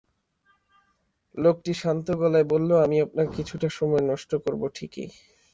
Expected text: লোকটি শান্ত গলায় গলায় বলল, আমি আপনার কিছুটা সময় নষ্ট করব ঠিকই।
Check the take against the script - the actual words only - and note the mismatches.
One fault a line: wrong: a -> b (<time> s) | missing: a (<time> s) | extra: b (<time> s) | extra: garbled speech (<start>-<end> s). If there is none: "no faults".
missing: গলায় (2.5 s)